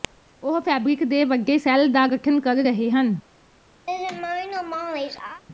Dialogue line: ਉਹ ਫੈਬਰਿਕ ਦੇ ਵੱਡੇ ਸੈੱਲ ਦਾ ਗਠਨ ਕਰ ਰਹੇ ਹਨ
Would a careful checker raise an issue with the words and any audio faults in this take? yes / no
yes